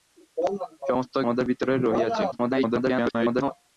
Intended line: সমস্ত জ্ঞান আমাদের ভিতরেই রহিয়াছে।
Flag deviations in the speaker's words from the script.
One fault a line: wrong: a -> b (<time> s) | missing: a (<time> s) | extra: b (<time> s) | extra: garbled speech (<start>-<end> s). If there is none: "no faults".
missing: জ্ঞান (1.1 s)
extra: garbled speech (2.3-3.5 s)